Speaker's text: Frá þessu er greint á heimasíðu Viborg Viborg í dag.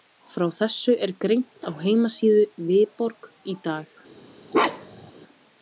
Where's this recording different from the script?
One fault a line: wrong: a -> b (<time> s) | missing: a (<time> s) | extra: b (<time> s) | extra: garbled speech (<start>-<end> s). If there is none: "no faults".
missing: Viborg (3.3 s)